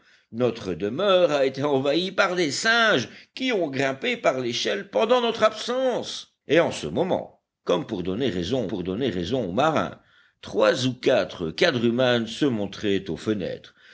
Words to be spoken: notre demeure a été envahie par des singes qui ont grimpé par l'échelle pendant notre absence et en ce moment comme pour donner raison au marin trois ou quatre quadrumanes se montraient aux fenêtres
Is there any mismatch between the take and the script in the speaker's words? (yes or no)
yes